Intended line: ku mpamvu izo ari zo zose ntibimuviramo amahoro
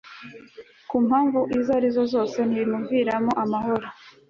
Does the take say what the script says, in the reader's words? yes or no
yes